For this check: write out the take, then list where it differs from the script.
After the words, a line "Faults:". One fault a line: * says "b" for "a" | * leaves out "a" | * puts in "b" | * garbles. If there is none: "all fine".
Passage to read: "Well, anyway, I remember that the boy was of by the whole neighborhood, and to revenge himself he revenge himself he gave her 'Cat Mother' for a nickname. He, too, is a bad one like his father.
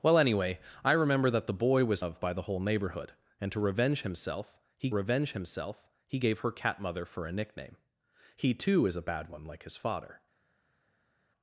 "Well, anyway, I remember that the boy was of by the whole neighborhood, and to revenge himself he revenge himself he gave her 'Cat Mother' for a nickname. He, too, is a bad one like his father.
Faults:
all fine